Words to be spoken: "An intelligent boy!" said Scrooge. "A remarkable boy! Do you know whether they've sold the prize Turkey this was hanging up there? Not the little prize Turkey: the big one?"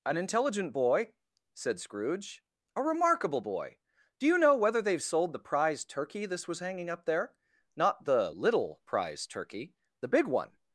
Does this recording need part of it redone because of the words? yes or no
no